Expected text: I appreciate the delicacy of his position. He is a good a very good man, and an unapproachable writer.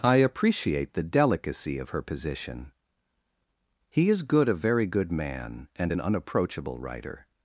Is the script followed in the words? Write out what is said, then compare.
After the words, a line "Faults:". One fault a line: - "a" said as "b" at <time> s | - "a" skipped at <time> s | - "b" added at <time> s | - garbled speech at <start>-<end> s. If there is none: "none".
I appreciate the delicacy of her position. He is good a very good man, and an unapproachable writer.
Faults:
- "his" said as "her" at 1.9 s
- "a" skipped at 4.2 s